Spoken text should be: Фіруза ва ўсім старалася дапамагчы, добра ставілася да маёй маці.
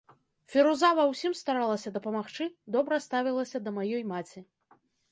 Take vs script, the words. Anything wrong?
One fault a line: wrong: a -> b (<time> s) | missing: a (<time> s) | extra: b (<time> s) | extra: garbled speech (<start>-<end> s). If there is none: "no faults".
no faults